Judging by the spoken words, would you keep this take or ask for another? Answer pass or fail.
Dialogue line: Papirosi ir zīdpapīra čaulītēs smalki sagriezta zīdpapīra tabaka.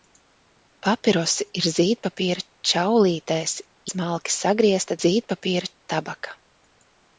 pass